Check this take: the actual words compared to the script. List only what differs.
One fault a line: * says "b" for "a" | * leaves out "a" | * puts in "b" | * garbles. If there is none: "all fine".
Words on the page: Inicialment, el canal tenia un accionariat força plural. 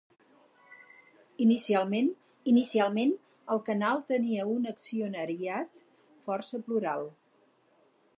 * puts in "inicialment"